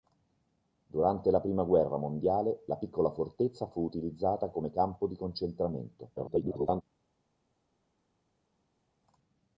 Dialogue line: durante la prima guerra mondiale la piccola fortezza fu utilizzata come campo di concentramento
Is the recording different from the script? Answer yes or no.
yes